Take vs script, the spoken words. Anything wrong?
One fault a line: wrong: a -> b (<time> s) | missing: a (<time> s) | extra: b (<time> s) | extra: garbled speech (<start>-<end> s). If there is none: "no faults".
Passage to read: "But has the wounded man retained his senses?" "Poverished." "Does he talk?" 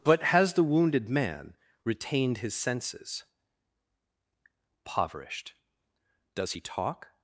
no faults